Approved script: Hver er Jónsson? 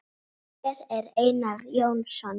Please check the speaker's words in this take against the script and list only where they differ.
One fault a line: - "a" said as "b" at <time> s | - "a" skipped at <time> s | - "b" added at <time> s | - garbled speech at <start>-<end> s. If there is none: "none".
- "Einar" added at 1.2 s